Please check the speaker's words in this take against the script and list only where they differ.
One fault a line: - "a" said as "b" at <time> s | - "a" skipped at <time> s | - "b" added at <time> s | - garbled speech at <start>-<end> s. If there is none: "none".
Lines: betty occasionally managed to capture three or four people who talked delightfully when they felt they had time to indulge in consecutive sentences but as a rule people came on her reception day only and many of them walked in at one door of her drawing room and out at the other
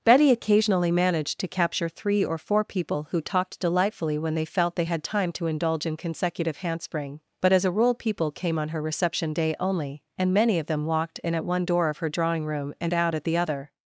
- "sentences" said as "handspring" at 6.6 s